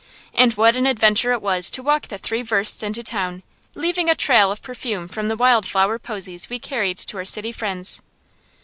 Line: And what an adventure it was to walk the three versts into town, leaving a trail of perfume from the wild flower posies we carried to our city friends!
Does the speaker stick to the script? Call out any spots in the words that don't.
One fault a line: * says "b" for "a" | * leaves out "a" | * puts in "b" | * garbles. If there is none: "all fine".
all fine